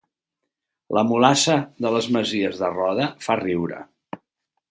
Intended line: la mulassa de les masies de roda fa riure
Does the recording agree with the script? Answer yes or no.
yes